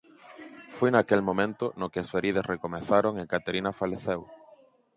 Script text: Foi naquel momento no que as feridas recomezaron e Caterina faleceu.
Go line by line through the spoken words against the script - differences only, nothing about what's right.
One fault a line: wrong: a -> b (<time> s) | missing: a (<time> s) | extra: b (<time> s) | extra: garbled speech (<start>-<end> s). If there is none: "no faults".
no faults